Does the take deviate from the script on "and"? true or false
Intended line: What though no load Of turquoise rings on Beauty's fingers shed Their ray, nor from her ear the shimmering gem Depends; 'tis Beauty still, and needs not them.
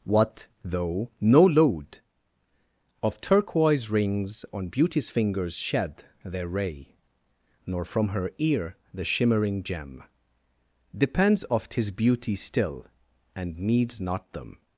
false